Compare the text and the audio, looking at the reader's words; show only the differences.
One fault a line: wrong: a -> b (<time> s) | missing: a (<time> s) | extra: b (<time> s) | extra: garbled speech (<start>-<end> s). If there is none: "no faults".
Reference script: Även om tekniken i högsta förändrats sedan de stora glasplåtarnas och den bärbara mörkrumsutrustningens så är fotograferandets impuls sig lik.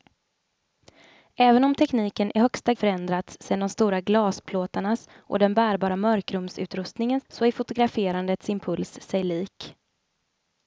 no faults